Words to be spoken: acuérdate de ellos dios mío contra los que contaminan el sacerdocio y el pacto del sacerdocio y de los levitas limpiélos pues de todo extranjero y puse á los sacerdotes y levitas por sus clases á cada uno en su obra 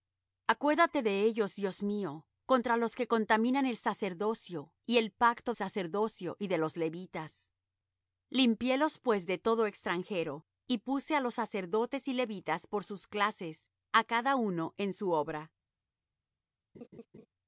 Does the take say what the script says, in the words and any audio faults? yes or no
no